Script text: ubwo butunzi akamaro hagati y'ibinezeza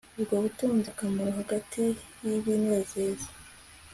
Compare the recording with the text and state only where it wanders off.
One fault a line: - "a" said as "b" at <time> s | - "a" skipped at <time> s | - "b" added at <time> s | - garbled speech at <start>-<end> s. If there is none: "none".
none